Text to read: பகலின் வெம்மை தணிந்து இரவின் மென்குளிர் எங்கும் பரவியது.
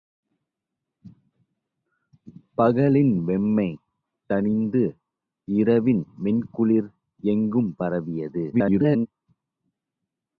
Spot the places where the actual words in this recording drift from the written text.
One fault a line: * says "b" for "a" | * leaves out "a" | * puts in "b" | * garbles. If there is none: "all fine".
* garbles